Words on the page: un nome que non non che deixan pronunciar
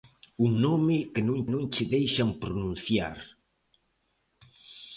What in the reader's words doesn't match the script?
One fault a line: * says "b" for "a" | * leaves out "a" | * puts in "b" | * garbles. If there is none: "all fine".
all fine